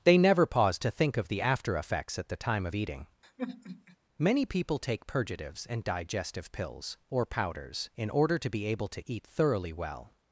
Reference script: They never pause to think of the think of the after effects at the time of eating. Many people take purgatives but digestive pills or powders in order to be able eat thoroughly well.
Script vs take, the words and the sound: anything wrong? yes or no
yes